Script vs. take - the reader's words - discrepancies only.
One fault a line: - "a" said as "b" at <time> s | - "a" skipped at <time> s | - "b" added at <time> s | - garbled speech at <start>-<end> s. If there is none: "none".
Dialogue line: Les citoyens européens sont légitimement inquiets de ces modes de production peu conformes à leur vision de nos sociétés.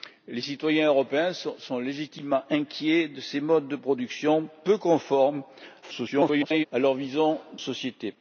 - garbled speech at 5.8-6.7 s
- "de nos" skipped at 7.4 s